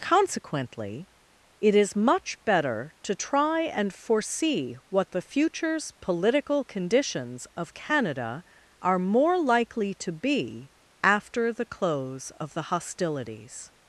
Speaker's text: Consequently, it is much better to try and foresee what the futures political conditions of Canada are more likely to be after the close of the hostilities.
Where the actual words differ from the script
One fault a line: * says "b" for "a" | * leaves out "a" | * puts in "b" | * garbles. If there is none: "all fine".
all fine